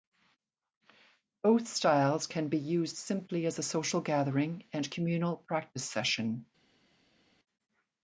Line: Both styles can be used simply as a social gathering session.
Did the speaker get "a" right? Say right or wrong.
right